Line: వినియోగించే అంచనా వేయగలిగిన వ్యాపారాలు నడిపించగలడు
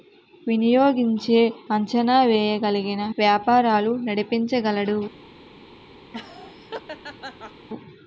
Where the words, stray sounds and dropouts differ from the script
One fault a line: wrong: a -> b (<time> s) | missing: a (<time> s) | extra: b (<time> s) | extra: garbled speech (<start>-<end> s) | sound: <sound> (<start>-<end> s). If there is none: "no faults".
sound: laugh (6.1-7.7 s)